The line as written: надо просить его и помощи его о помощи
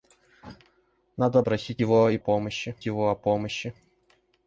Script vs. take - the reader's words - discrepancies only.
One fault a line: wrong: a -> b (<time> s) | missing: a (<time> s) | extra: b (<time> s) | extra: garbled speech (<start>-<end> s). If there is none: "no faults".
no faults